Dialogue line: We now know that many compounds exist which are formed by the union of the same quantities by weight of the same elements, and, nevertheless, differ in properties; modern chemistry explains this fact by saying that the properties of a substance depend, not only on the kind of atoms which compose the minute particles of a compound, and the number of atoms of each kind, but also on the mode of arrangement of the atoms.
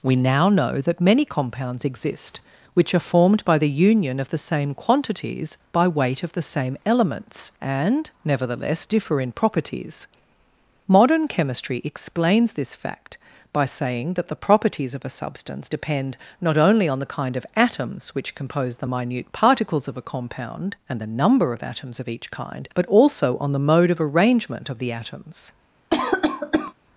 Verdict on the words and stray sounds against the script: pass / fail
fail